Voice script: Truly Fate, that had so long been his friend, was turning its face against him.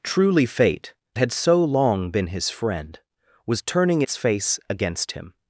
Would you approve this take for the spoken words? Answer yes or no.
no